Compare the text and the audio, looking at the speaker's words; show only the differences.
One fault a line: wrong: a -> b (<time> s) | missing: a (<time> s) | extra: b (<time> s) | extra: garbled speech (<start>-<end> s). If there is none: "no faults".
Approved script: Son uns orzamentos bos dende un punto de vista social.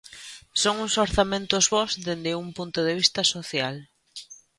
no faults